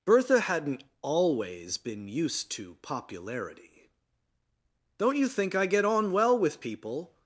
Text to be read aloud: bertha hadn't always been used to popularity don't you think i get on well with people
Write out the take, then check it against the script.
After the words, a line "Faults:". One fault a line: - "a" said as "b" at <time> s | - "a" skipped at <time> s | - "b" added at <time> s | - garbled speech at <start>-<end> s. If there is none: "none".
bertha hadn't always been used to popularity don't you think i get on well with people
Faults:
none